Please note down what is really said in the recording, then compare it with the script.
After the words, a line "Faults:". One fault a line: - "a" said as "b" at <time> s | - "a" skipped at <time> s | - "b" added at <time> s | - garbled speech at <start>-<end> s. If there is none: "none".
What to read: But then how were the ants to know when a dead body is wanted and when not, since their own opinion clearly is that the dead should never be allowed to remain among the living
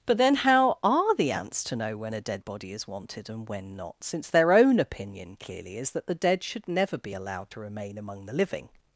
But then how are the ants to know when a dead body is wanted and when not, since their own opinion clearly is that the dead should never be allowed to remain among the living
Faults:
- "were" said as "are" at 0.8 s